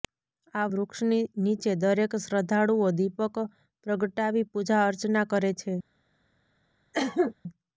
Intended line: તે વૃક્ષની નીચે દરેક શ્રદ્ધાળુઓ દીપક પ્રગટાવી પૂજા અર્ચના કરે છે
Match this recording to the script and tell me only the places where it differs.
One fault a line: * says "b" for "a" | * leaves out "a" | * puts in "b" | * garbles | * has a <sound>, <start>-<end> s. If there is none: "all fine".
* says "આ" for "તે"
* has a cough, 6.9-7.3 s